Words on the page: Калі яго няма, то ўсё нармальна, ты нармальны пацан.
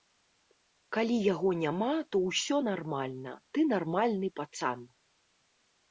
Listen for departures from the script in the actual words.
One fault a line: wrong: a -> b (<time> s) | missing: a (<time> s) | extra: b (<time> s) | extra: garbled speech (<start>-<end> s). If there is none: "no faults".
no faults